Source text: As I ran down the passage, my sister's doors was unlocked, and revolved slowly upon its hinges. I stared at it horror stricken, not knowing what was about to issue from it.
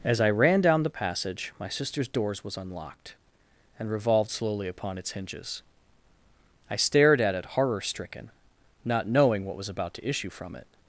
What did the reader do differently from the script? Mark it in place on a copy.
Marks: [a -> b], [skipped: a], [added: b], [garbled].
As I ran down the passage, my sister's doors was unlocked, and revolved slowly upon its hinges. I stared at it horror stricken, not knowing what was about to issue from it.